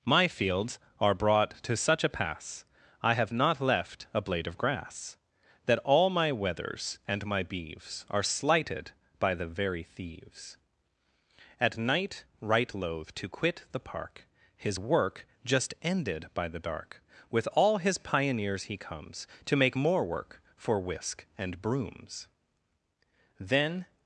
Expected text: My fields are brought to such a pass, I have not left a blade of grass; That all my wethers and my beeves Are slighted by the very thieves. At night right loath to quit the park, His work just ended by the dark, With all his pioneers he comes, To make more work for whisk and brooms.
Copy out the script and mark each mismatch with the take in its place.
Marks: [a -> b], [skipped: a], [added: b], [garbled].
My fields are brought to such a pass, I have not left a blade of grass; That all my wethers and my beeves Are slighted by the very thieves. At night right loath to quit the park, His work just ended by the dark, With all his pioneers he comes, To make more work for whisk and brooms. [added: Then]